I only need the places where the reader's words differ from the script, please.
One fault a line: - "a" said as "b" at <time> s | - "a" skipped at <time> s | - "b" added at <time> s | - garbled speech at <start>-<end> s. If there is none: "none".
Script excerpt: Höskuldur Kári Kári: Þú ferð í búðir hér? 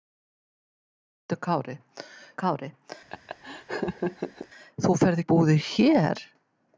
none